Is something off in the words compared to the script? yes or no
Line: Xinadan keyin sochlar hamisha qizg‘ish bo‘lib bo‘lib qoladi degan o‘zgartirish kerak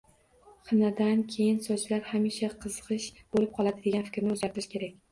yes